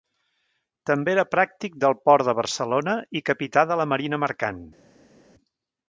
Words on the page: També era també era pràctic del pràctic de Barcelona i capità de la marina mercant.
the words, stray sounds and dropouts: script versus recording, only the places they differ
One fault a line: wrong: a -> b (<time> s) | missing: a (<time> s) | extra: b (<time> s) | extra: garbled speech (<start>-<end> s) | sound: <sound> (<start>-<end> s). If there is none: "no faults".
missing: també era (1.2 s)
wrong: pràctic -> port (2.1 s)